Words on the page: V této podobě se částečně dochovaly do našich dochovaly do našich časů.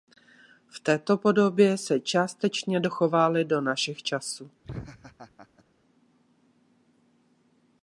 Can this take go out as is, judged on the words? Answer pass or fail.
fail